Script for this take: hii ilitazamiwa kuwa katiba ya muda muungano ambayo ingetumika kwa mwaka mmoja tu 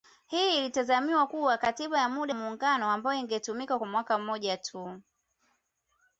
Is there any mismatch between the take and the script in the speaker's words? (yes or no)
no